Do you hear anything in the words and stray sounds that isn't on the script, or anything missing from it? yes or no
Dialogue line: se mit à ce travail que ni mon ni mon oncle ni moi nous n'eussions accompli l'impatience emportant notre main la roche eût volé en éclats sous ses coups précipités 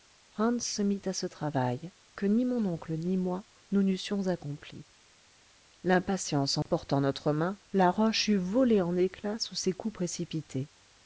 yes